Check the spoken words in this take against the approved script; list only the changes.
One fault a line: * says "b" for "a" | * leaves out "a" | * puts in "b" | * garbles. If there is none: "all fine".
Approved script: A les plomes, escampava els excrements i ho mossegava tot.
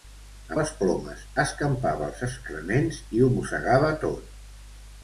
all fine